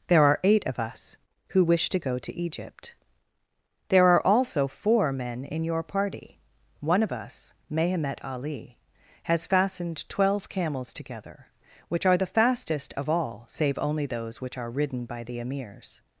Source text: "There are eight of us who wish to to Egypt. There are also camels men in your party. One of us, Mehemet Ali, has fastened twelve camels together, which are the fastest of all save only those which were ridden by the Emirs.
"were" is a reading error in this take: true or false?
true